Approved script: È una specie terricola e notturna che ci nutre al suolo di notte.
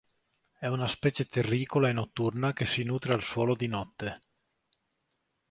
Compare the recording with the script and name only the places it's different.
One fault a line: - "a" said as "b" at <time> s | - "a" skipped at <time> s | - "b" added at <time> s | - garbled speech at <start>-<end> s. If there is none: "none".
- "ci" said as "si" at 2.6 s